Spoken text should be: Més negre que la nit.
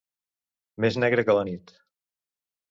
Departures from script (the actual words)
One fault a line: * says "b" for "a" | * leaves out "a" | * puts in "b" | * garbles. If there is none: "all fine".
all fine